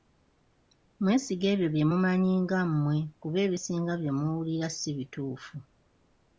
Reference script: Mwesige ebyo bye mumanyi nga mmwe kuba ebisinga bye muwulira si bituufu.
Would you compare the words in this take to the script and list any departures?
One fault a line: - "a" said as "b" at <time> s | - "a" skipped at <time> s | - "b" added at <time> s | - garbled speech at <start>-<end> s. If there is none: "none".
none